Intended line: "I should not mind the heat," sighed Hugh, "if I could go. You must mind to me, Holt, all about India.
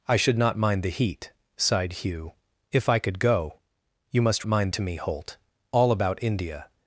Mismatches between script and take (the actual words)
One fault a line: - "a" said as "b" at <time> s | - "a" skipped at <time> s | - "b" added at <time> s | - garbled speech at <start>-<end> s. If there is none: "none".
none